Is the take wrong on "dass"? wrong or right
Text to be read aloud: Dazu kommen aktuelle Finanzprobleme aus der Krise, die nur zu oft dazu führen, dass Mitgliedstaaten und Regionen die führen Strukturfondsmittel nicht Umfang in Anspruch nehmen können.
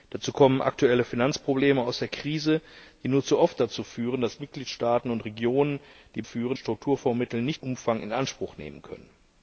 right